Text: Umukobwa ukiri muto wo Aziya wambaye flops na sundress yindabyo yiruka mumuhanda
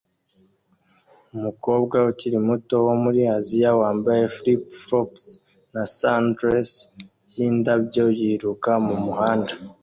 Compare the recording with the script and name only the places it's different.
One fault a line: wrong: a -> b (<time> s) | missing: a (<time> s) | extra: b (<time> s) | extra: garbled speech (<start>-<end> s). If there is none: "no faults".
extra: muri (3.0 s)
extra: flip (4.3 s)